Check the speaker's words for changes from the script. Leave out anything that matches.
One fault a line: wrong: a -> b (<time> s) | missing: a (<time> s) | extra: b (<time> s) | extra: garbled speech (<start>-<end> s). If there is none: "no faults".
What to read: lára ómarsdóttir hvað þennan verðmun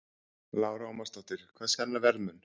no faults